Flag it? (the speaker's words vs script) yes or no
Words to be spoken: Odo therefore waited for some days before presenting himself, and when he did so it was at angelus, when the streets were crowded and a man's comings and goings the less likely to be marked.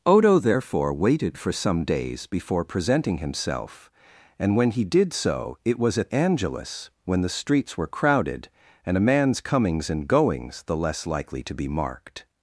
no